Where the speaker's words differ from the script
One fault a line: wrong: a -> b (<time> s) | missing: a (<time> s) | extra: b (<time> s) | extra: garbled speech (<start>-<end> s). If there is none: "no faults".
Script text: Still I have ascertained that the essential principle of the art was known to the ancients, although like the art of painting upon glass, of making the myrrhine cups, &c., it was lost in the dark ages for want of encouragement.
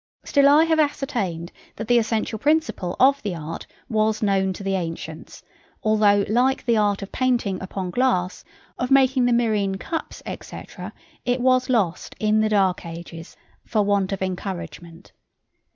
no faults